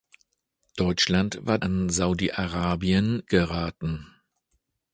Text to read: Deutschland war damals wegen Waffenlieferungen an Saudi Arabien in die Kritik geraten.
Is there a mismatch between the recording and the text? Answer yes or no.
yes